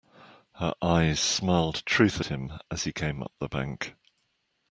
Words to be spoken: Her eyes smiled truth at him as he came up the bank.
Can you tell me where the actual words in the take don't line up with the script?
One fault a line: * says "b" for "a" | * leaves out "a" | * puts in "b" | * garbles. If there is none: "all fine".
* leaves out "at"